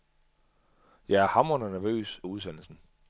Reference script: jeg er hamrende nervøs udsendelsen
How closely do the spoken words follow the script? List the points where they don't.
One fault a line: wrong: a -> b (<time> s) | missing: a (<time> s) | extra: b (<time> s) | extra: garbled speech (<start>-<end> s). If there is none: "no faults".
no faults